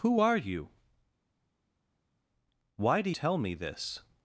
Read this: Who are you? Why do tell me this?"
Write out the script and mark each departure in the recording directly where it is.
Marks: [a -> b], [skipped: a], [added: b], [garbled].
Who are you? Why do tell me this?"